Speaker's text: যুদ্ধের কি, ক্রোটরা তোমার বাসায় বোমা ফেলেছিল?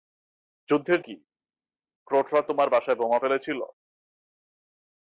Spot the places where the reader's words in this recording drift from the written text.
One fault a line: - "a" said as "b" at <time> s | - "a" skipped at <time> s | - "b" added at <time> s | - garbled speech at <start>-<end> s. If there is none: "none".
none